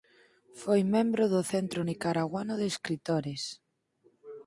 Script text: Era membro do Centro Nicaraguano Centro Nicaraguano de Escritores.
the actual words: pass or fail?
fail